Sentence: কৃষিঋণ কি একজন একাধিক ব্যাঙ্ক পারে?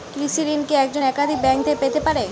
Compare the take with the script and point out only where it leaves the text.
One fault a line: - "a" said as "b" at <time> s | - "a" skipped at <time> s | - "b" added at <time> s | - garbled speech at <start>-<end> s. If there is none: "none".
- "থেকে পেতে" added at 1.6 s